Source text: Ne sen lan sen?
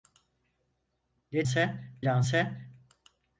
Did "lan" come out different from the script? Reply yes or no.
no